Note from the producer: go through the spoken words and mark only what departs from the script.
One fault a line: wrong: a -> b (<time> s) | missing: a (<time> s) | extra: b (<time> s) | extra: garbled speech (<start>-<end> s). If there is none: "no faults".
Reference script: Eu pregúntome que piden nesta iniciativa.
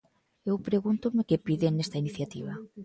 no faults